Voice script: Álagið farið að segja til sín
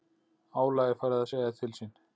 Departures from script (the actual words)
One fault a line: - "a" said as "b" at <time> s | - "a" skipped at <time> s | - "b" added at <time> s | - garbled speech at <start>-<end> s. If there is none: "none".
none